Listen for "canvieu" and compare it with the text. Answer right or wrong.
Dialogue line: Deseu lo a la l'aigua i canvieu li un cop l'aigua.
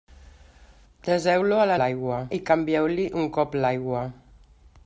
right